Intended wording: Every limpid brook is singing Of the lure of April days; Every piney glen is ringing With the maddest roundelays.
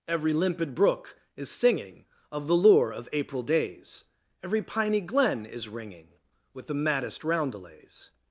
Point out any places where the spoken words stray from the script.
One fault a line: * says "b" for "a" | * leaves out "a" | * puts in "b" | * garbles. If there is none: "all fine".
all fine